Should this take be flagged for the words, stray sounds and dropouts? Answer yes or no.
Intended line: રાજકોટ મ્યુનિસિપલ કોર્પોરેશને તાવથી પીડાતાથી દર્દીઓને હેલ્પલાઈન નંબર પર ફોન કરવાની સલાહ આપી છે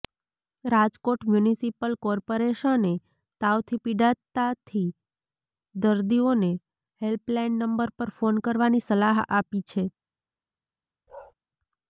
yes